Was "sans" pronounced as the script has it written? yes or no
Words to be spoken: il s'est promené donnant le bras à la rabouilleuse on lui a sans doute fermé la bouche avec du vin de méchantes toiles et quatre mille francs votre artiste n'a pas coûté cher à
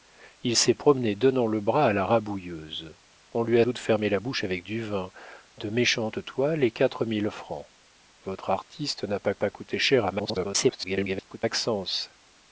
no